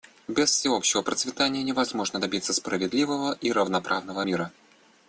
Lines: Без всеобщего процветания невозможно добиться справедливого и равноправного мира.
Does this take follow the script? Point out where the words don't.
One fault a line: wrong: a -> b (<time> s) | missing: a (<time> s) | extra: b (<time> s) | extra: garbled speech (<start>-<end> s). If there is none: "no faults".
no faults